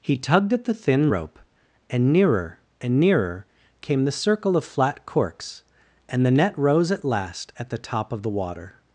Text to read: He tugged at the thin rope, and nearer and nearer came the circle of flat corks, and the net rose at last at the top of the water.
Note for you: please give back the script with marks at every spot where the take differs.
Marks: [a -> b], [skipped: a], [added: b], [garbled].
He tugged at the thin rope, and nearer and nearer came the circle of flat corks, and the net rose at last at the top of the water.